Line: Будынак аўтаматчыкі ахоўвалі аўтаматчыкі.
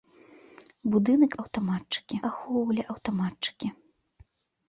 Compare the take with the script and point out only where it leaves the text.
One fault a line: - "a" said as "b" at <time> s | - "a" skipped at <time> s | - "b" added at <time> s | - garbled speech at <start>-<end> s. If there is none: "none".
none